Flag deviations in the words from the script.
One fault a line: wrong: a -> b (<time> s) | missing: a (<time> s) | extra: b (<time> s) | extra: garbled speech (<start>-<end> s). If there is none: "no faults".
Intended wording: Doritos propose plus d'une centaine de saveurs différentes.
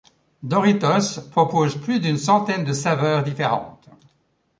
no faults